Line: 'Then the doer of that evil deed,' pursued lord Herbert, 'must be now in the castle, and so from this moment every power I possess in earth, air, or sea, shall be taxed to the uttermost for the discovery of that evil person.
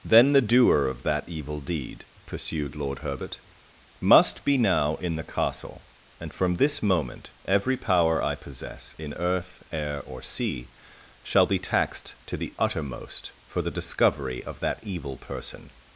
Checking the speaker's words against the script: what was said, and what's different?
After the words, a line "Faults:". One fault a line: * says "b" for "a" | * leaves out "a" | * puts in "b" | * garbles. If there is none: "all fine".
'Then the doer of that evil deed,' pursued lord Herbert, 'must be now in the castle, and from this moment every power I possess in earth, air, or sea, shall be taxed to the uttermost for the discovery of that evil person.
Faults:
* leaves out "so"